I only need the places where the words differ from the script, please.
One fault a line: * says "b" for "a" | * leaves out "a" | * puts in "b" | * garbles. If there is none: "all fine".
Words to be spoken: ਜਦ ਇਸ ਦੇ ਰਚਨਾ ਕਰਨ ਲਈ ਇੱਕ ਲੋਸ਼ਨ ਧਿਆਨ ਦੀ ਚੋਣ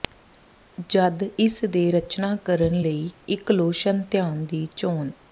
all fine